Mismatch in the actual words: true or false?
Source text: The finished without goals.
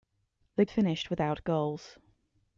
false